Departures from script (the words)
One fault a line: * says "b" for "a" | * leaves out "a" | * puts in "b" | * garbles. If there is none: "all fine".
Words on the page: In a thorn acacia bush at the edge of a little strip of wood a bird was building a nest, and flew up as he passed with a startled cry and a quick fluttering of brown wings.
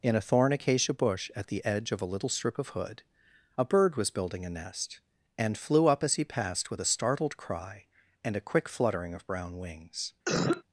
* says "hood" for "wood"